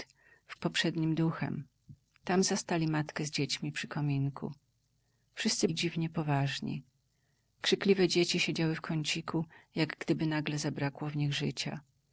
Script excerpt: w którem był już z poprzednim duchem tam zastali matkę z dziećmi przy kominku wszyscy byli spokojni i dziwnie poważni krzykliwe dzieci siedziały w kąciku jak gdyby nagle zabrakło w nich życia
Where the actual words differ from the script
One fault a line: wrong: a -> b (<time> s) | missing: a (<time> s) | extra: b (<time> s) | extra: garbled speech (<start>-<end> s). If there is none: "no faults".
missing: którem był już (0.6 s)
missing: byli spokojni (5.7 s)